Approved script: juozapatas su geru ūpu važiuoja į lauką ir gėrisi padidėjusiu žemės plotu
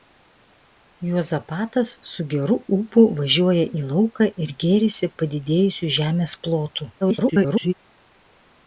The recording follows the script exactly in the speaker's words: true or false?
false